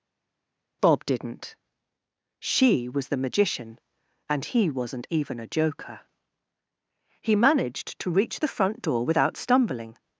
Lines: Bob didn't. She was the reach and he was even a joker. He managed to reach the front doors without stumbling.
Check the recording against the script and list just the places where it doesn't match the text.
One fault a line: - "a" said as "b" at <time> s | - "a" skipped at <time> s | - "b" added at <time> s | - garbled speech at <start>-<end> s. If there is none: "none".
- "reach" said as "magician" at 3.2 s
- "was" said as "wasn't" at 4.7 s
- "doors" said as "door" at 8.8 s